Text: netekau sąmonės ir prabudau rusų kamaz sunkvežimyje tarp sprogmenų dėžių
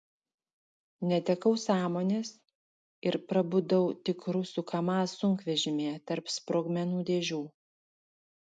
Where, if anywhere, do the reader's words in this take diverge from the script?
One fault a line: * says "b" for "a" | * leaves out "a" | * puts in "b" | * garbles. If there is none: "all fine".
* puts in "tik"